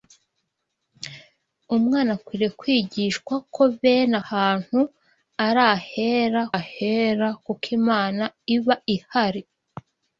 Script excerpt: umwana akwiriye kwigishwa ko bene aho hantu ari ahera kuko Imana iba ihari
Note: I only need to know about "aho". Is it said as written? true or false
false